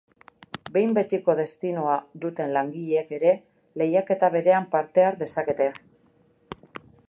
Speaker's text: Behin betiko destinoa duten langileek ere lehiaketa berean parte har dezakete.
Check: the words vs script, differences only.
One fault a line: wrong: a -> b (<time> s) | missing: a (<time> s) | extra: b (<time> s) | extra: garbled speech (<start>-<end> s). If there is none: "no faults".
no faults